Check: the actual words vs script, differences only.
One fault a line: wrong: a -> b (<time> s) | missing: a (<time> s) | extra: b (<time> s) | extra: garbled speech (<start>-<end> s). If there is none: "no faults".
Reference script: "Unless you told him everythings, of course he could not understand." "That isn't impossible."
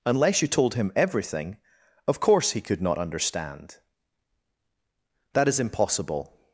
wrong: everythings -> everything (1.0 s)
wrong: isn't -> is (5.5 s)